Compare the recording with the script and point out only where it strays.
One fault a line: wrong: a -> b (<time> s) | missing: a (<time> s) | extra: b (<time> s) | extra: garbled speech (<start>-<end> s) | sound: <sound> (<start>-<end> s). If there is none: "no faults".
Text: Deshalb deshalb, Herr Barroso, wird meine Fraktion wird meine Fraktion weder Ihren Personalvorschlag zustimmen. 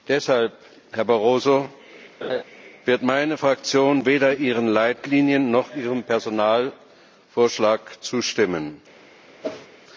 missing: deshalb (0.5 s)
sound: laugh (2.2-2.4 s)
wrong: wird meine Fraktion weder Ihren -> weder Ihren Leitlinien noch Ihrem (4.0 s)
sound: whoosh (9.4-9.7 s)